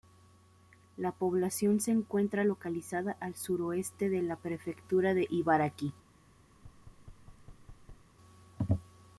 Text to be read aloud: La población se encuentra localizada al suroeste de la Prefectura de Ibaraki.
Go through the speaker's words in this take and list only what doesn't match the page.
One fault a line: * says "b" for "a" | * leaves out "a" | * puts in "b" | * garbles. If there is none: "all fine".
all fine